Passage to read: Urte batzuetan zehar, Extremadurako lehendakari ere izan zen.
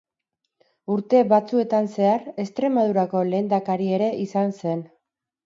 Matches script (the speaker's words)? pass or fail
pass